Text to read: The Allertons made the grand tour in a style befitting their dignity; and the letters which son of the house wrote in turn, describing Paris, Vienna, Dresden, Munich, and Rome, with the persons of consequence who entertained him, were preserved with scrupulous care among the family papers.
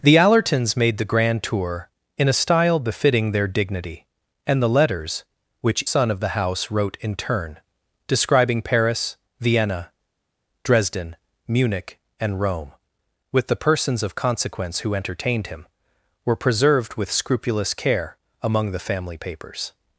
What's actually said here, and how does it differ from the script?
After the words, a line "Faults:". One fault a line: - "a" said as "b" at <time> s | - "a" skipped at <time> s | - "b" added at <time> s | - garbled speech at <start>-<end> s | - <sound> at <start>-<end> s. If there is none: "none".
The Allertons made the grand tour in a style befitting their dignity; and the letters which son of the house wrote in turn, describing Paris, Vienna, Dresden, Munich, and Rome, with the persons of consequence who entertained him, were preserved with scrupulous care among the family papers.
Faults:
none